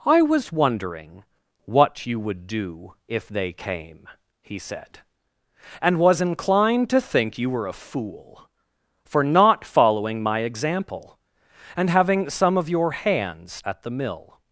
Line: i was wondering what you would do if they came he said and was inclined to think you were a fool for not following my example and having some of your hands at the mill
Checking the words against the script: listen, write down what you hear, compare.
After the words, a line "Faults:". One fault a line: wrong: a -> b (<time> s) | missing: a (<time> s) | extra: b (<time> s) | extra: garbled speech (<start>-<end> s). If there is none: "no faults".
i was wondering what you would do if they came he said and was inclined to think you were a fool for not following my example and having some of your hands at the mill
Faults:
no faults